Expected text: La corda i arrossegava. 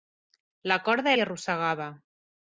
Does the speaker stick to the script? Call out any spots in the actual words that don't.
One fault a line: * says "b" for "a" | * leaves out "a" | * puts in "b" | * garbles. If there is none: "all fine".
all fine